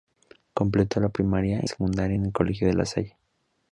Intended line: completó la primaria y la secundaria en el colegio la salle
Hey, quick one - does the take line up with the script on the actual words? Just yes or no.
no